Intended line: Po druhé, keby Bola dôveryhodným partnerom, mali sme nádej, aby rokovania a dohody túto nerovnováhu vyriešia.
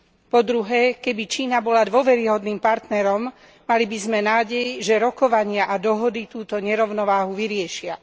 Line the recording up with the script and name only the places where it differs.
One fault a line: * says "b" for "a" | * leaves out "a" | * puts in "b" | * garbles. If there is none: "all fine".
* puts in "Čína"
* puts in "by"
* says "že" for "aby"